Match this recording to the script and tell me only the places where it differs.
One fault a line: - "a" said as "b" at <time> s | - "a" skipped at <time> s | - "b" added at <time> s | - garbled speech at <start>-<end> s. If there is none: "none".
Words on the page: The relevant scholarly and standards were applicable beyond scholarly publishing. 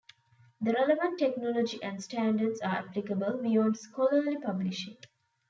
- "scholarly" said as "technology" at 1.2 s
- "were" said as "are" at 2.6 s